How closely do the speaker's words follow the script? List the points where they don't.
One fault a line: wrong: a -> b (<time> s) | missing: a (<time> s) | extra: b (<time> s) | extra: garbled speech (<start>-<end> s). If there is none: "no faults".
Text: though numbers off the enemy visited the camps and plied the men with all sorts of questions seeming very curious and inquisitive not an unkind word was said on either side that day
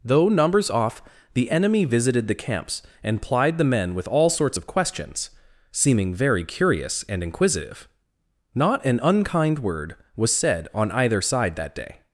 no faults